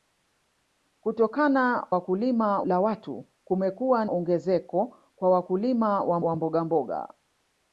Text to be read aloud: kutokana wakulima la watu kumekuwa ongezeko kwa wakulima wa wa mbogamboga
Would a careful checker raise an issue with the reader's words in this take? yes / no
no